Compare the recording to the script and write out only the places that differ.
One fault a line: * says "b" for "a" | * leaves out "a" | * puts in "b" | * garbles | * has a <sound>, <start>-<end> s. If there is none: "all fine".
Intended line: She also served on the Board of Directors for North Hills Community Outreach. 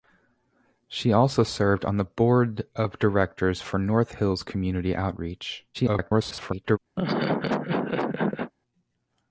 * garbles
* has a laugh, 7.0-8.5 s